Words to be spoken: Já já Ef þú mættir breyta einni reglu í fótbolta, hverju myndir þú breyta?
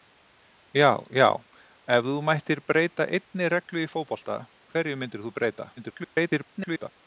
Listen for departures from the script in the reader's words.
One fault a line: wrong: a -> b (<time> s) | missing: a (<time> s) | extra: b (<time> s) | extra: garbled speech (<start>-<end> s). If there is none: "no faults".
extra: garbled speech (5.8-6.9 s)